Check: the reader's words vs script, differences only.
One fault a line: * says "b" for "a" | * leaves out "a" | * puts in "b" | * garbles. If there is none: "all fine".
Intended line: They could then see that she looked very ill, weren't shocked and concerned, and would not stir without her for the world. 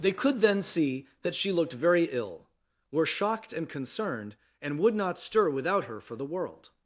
* says "were" for "weren't"